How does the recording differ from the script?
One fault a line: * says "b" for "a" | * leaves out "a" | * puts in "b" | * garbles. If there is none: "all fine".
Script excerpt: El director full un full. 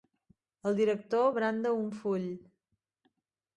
* says "branda" for "full"